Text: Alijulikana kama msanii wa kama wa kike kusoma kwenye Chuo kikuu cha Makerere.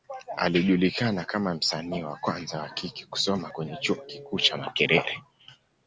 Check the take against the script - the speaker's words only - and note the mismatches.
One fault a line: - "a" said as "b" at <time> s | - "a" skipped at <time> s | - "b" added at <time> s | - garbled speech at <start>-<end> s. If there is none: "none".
- "kama" said as "kwanza" at 2.1 s